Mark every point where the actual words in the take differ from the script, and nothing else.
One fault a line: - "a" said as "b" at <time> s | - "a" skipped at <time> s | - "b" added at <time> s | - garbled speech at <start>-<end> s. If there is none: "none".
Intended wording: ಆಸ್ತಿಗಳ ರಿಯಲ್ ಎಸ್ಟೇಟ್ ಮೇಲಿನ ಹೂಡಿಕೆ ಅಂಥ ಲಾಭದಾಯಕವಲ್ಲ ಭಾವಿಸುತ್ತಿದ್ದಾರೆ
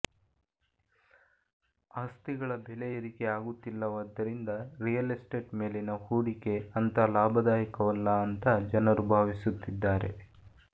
- "ಬೆಲೆ ಏರಿಕೆ ಆಗುತ್ತಿಲ್ಲವಾದ್ದರಿಂದ" added at 2.6 s
- "ಅಂತ ಜನರು" added at 8.3 s